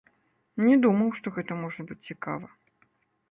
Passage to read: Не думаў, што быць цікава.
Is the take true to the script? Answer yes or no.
no